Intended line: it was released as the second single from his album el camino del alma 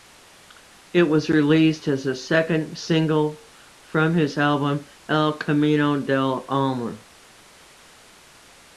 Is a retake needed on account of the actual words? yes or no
no